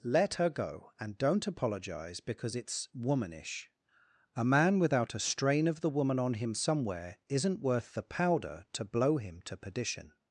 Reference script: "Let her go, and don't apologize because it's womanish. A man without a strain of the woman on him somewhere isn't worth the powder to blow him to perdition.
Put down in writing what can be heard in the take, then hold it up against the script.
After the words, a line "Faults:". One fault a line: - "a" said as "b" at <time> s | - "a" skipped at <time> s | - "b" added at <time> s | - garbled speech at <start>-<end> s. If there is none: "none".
"Let her go, and don't apologize because it's womanish. A man without a strain of the woman on him somewhere isn't worth the powder to blow him to perdition.
Faults:
none